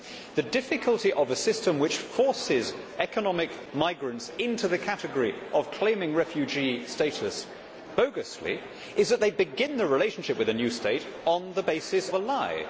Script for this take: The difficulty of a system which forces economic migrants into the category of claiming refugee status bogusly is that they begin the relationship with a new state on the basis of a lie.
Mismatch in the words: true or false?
true